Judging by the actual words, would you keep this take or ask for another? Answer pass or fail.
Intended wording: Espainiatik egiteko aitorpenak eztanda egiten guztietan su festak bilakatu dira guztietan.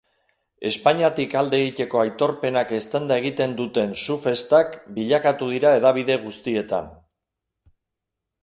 fail